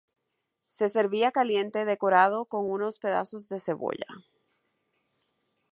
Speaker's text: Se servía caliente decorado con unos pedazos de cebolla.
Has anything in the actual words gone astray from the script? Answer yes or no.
no